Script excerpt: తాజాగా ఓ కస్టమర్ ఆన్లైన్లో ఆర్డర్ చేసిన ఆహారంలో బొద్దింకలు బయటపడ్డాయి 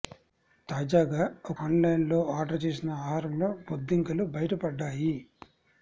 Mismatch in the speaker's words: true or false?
true